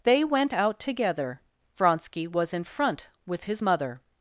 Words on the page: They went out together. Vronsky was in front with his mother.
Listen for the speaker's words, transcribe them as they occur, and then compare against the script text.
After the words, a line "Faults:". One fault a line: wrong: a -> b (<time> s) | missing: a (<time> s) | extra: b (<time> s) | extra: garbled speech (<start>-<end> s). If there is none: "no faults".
They went out together. Vronsky was in front with his mother.
Faults:
no faults